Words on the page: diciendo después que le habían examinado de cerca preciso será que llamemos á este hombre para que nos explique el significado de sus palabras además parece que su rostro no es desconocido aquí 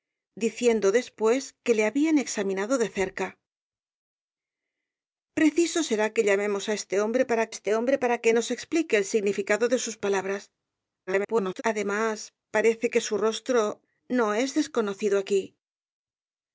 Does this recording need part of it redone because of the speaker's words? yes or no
yes